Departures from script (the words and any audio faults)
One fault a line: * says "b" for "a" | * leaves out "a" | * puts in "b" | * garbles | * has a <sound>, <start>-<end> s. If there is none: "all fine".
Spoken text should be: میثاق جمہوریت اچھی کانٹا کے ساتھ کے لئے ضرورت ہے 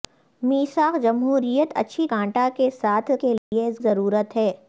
* has a dropout, 3.4-3.5 s